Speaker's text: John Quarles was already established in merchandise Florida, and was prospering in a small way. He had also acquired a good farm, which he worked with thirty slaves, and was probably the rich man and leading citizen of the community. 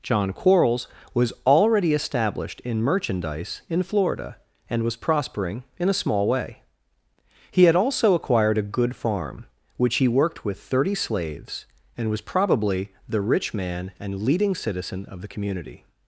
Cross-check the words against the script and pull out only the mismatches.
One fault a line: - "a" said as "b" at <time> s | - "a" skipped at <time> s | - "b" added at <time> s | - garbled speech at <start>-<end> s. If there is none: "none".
- "in" added at 3.7 s